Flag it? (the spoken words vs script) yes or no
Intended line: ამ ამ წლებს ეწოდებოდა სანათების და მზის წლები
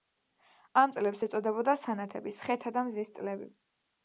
yes